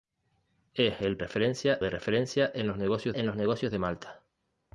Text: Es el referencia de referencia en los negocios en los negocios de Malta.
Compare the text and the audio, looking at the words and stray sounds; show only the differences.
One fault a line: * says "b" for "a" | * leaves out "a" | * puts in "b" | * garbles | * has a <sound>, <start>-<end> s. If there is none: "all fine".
all fine